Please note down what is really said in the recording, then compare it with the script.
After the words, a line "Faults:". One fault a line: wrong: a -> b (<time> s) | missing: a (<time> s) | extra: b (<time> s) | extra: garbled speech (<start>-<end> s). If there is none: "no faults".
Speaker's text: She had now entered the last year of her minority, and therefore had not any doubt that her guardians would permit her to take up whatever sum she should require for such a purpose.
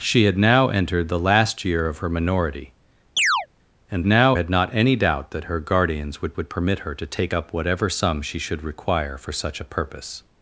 She had now entered the last year of her minority, and now had not any doubt that her guardians would would permit her to take up whatever sum she should require for such a purpose.
Faults:
wrong: therefore -> now (4.0 s)
extra: would (6.4 s)